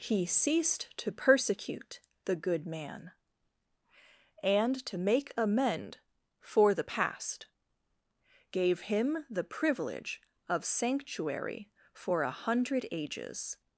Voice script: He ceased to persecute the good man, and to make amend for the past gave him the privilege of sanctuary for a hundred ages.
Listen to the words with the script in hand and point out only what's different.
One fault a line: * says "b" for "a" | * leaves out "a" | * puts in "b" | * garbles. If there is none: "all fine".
all fine